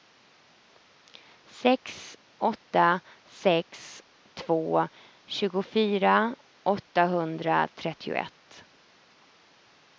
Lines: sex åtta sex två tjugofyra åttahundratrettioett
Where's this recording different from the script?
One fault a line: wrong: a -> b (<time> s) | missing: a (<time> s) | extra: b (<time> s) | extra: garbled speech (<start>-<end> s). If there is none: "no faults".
no faults